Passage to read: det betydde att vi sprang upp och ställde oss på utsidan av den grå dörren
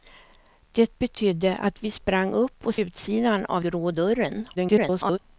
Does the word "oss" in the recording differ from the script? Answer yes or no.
yes